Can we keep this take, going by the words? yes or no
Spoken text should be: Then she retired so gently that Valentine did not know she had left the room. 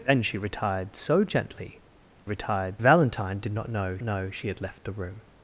no